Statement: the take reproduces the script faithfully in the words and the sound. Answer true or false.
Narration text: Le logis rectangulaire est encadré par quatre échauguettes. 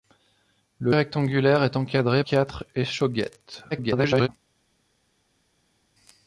false